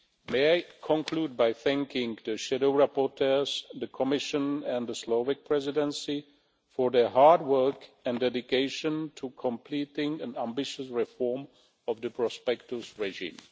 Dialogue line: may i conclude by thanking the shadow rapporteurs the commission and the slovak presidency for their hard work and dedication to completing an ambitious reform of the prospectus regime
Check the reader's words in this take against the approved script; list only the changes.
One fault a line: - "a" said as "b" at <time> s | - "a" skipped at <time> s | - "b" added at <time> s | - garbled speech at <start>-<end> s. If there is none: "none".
none